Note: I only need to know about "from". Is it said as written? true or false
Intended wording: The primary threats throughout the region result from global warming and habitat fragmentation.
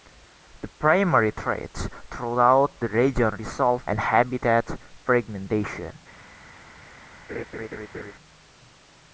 false